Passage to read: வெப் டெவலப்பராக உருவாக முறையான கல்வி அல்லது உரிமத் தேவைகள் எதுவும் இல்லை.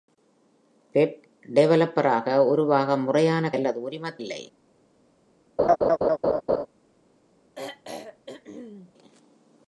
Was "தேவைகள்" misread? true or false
true